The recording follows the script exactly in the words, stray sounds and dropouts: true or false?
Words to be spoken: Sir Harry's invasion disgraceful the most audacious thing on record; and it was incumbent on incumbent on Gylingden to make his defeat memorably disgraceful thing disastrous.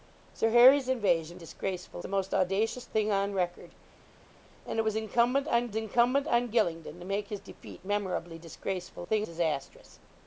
true